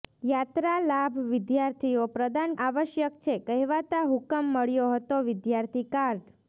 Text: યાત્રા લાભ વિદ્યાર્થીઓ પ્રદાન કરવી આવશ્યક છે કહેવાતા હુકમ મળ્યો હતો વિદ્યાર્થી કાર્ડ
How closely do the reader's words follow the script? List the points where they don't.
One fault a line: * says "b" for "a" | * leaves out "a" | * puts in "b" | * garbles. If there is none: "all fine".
* leaves out "કરવી"